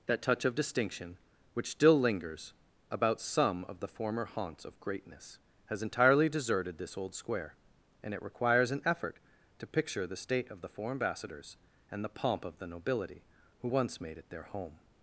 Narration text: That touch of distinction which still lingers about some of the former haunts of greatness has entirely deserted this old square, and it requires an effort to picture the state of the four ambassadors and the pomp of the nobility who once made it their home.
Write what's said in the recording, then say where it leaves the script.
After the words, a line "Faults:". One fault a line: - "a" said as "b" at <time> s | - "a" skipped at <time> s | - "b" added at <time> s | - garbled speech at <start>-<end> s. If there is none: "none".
That touch of distinction which still lingers about some of the former haunts of greatness has entirely deserted this old square, and it requires an effort to picture the state of the four ambassadors and the pomp of the nobility who once made it their home.
Faults:
none